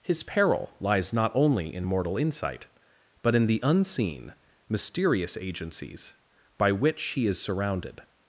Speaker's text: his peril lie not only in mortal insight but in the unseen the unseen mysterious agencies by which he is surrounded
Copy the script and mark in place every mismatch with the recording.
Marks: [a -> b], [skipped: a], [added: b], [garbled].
his peril [lie -> lies] not only in mortal insight but in the unseen [skipped: the unseen] mysterious agencies by which he is surrounded